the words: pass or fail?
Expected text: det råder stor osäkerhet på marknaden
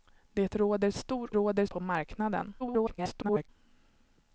fail